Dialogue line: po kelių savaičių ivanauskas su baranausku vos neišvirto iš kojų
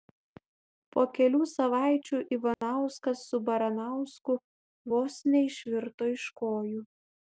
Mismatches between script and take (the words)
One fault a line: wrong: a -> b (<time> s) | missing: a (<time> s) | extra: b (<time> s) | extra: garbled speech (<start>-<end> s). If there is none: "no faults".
no faults